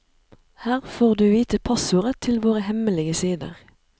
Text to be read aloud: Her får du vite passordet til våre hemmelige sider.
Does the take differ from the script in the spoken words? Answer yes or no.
no